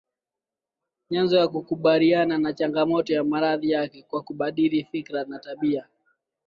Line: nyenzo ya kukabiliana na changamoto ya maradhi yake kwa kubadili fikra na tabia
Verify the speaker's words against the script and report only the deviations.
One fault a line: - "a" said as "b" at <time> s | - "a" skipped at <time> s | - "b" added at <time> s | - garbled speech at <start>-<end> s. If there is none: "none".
none